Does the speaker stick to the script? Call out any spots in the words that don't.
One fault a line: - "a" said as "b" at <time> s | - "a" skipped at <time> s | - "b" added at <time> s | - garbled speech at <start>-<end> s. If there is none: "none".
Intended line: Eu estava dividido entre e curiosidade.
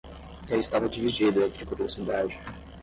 none